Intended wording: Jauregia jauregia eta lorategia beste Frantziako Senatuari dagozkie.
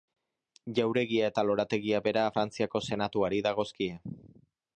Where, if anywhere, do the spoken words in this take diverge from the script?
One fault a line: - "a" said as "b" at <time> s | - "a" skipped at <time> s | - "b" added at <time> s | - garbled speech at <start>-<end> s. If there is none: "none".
- "jauregia" skipped at 1.3 s
- "beste" said as "bera" at 2.1 s